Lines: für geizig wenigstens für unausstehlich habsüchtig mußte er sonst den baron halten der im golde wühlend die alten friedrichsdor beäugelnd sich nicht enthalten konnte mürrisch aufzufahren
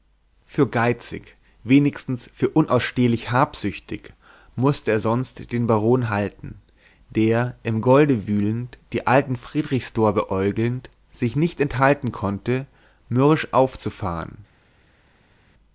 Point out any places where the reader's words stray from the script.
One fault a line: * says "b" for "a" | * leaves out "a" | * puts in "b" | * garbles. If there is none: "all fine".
all fine